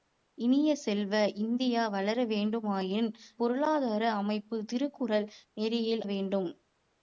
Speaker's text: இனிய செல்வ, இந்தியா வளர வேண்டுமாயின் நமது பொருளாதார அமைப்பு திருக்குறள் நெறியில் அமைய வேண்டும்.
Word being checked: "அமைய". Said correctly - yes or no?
no